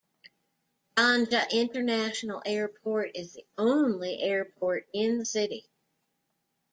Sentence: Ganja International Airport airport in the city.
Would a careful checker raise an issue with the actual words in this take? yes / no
yes